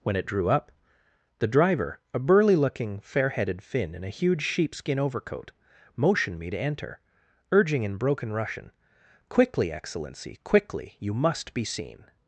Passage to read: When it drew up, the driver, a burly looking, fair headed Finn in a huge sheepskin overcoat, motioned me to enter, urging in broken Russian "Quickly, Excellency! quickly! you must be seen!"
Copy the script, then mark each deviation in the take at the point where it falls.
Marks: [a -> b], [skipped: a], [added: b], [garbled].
When it drew up, the driver, a burly looking, fair headed Finn in a huge sheepskin overcoat, motioned me to enter, urging in broken Russian "Quickly, Excellency! quickly! you must be seen!"